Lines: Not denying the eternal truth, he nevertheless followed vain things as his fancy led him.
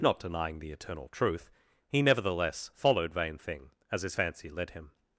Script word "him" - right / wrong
right